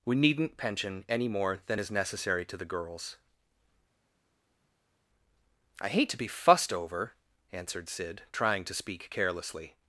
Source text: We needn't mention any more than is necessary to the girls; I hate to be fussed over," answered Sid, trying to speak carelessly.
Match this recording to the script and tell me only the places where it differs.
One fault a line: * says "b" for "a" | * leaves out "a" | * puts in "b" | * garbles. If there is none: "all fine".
* says "pension" for "mention"